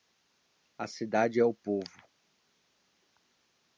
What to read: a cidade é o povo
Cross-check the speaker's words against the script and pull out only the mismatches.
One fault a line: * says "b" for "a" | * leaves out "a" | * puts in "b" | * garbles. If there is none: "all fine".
all fine